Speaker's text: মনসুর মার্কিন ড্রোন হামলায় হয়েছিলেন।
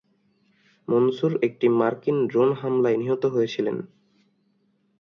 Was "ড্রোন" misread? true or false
false